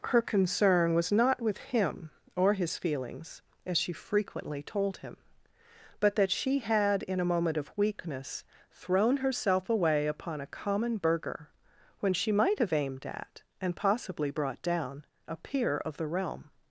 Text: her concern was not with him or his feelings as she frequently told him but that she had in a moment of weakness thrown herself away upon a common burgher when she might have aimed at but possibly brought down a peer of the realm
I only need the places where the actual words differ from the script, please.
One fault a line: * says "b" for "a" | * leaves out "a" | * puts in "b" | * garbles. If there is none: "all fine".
* says "and" for "but"